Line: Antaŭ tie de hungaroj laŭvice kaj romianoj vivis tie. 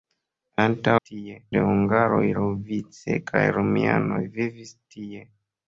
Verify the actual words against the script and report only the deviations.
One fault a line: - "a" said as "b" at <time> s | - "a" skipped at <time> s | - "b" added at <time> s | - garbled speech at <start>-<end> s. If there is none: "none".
none